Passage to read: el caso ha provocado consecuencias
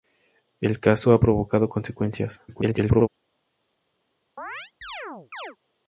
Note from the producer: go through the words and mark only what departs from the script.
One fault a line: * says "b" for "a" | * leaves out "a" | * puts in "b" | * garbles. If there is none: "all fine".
* garbles